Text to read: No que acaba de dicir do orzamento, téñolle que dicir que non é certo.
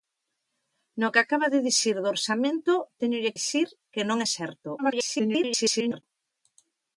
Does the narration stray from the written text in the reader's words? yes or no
yes